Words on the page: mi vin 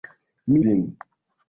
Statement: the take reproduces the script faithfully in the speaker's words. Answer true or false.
true